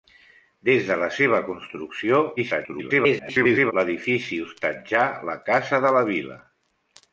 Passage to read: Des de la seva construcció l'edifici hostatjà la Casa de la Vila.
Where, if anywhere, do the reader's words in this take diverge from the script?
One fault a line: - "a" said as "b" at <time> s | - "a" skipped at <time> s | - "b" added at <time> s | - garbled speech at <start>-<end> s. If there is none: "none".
- garbled speech at 2.4-3.7 s